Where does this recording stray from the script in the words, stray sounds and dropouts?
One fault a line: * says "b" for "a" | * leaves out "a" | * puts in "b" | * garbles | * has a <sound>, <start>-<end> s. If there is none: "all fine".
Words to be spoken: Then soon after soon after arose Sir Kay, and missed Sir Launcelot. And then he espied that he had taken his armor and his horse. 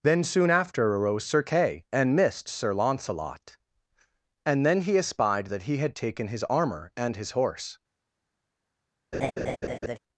* leaves out "soon after"
* has a laugh, 9.1-10.0 s